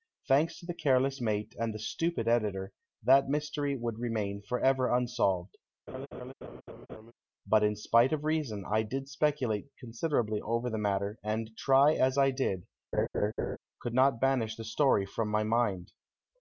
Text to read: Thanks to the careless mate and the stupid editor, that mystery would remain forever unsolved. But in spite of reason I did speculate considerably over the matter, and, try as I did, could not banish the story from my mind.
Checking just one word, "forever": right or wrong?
right